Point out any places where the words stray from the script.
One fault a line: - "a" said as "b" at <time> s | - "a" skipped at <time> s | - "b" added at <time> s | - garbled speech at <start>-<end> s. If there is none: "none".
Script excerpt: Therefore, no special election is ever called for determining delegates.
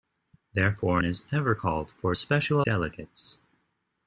- "no special election" skipped at 1.0 s
- "determining" said as "special" at 2.1 s